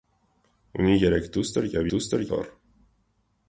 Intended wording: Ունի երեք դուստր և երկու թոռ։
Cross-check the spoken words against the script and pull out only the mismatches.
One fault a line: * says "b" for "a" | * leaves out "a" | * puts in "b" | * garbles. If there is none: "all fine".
* says "դուստր" for "երկու"